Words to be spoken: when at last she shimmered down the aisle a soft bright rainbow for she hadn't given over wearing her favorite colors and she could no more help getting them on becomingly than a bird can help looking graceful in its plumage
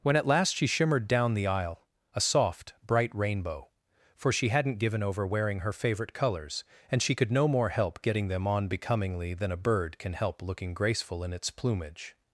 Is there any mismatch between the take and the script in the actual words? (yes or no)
no